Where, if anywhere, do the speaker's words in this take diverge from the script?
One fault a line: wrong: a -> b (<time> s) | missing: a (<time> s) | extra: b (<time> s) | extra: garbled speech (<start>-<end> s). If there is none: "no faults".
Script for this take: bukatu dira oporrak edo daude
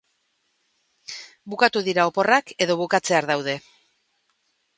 extra: bukatzear (2.8 s)